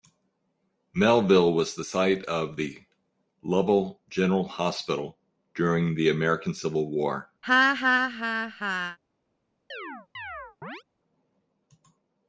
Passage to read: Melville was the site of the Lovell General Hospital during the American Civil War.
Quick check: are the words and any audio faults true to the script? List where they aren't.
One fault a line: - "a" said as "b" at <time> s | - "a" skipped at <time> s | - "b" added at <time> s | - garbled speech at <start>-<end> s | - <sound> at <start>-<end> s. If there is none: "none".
- laugh at 7.4-9.0 s
- chirp at 9.7-10.8 s